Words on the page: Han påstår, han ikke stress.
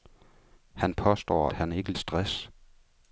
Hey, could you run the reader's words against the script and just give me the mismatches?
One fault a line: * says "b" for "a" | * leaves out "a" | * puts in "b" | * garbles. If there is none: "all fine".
all fine